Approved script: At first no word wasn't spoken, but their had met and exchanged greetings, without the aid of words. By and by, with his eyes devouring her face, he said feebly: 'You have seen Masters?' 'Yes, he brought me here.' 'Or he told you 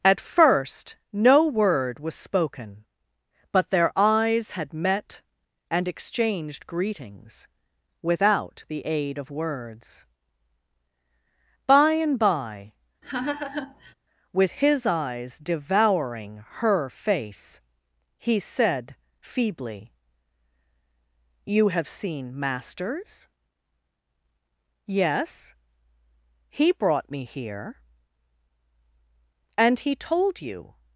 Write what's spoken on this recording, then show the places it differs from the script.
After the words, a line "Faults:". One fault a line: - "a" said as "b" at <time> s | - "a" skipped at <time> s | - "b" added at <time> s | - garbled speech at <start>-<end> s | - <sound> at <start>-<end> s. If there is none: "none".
At first no word was spoken, but their eyes had met and exchanged greetings, without the aid of words. By and by, with his eyes devouring her face, he said feebly: 'You have seen Masters?' 'Yes, he brought me here.' 'And he told you
Faults:
- "wasn't" said as "was" at 2.0 s
- "eyes" added at 4.0 s
- laugh at 13.0-13.9 s
- "Or" said as "And" at 29.6 s